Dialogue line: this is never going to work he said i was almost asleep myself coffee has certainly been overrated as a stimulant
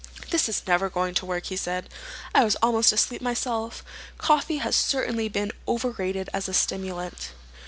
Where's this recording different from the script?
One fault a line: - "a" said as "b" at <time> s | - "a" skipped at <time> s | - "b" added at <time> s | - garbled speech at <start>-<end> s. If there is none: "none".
none